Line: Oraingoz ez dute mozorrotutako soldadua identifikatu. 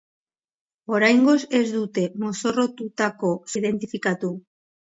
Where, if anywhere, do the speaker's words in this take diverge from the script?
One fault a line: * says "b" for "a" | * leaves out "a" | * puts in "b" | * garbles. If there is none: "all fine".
* leaves out "soldadua"